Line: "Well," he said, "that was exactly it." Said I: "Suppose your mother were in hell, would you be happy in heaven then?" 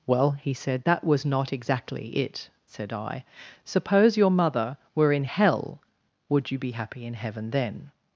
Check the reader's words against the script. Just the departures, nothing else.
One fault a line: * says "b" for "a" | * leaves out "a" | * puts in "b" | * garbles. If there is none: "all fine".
* puts in "not"